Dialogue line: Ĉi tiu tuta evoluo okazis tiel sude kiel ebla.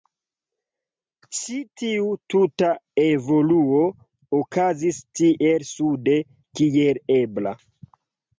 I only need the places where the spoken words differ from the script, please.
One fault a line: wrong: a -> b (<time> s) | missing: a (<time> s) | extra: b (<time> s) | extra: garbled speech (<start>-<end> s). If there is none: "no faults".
no faults